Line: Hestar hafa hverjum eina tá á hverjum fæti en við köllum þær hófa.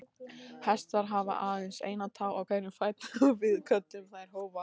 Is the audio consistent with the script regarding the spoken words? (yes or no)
no